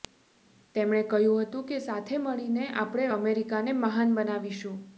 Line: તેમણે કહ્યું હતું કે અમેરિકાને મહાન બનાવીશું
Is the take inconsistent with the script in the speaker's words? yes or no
yes